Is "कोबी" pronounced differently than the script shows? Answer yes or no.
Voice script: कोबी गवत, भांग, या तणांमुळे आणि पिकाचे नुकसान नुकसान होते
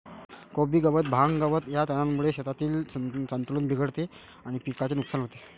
no